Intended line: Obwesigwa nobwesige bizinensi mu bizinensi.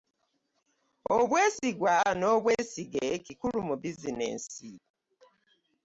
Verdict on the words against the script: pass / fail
fail